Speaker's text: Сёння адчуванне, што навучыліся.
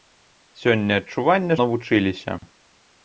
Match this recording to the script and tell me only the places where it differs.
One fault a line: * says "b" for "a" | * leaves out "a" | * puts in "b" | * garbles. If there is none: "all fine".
* leaves out "што"